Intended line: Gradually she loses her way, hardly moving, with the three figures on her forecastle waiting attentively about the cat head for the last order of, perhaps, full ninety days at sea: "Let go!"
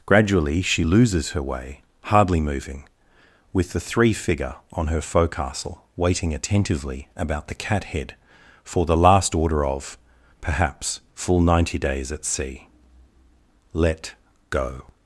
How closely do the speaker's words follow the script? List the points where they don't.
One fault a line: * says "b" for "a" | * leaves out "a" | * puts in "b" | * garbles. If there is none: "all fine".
* says "figure" for "figures"